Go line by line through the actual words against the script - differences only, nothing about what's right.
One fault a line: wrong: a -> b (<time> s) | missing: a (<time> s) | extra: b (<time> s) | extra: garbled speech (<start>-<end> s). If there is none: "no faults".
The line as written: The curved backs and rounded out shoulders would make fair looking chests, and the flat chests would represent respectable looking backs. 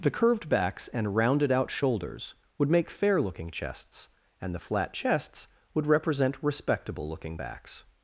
no faults